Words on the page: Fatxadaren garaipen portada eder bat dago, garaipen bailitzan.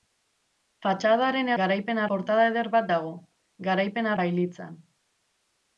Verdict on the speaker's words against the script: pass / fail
pass